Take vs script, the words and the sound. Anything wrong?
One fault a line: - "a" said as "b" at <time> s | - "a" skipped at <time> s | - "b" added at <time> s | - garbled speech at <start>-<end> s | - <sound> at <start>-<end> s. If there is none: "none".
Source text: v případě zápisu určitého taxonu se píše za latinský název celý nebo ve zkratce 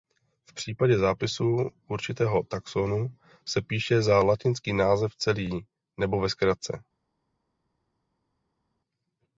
none